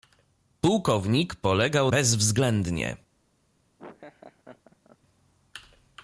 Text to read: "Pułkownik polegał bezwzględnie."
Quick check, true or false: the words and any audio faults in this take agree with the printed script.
false